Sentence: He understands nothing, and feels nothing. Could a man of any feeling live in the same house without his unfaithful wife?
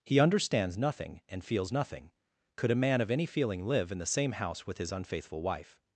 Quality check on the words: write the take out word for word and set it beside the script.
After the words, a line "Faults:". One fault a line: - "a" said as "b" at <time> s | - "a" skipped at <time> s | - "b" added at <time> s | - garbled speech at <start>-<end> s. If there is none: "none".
He understands nothing, and feels nothing. Could a man of any feeling live in the same house with his unfaithful wife?
Faults:
- "without" said as "with" at 4.7 s